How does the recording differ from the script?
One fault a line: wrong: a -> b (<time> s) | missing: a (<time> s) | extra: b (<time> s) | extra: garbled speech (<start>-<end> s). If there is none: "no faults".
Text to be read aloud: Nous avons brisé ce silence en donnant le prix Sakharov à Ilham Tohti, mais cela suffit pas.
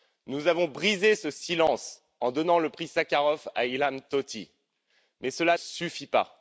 no faults